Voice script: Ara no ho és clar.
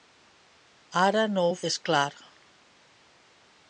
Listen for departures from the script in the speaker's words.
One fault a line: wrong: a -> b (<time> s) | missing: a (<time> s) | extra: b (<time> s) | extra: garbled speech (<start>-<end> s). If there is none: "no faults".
no faults